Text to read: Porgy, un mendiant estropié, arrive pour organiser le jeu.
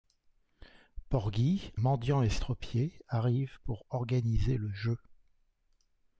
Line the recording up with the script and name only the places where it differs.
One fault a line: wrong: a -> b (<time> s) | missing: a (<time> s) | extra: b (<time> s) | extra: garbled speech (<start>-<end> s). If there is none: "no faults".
missing: un (1.7 s)